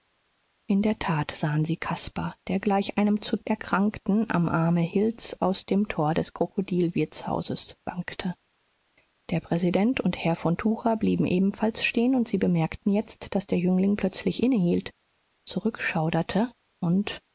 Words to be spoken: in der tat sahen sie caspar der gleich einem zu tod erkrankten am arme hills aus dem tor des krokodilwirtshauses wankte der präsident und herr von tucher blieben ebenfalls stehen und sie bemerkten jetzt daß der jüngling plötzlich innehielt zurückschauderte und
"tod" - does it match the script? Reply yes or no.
no